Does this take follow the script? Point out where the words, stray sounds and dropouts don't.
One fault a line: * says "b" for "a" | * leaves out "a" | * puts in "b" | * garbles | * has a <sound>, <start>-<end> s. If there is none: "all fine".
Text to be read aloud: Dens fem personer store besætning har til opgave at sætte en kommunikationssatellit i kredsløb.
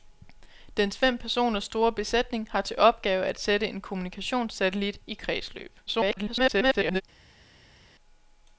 * garbles